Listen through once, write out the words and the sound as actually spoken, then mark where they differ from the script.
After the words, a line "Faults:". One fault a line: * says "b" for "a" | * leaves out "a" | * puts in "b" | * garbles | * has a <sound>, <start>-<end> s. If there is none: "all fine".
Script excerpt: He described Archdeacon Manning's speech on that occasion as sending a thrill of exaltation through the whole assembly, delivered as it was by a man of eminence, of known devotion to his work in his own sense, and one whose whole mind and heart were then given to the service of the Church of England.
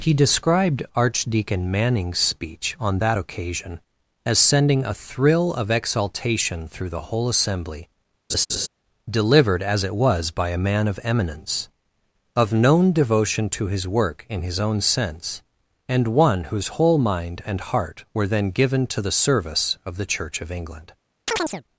He described Archdeacon Manning's speech on that occasion as sending a thrill of exaltation through the whole assembly, delivered as it was by a man of eminence, of known devotion to his work in his own sense, and one whose whole mind and heart were then given to the service of the Church of England.
Faults:
* has a laugh, 8.3-8.7 s
* has a chirp, 21.3-21.6 s